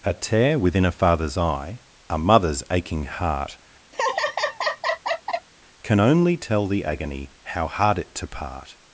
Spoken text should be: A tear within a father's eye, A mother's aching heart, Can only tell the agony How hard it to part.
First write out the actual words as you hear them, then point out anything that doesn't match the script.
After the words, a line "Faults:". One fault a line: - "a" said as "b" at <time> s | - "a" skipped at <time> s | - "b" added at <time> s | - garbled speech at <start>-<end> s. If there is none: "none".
A tear within a father's eye, A mother's aching heart, Can only tell the agony How hard it to part.
Faults:
none